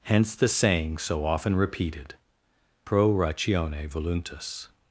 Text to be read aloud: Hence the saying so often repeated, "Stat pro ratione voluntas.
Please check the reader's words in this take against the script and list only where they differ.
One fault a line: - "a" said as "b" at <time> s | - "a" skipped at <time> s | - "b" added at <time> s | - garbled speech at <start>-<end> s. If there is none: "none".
- "Stat" skipped at 2.1 s